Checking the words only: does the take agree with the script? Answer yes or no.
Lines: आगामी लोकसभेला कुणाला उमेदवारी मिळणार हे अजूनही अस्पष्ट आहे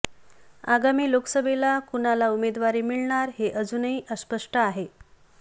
yes